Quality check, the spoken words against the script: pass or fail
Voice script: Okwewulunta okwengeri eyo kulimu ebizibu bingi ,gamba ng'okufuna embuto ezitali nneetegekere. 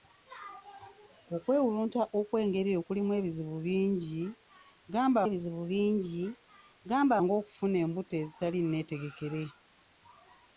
fail